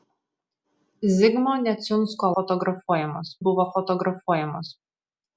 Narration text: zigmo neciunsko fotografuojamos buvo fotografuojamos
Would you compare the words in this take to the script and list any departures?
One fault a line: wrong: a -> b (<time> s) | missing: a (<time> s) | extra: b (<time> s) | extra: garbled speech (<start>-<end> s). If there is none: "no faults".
no faults